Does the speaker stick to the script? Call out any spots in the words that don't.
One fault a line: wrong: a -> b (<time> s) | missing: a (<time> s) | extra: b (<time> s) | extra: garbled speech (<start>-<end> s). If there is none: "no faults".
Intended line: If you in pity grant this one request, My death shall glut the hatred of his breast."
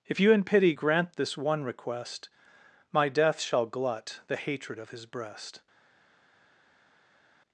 no faults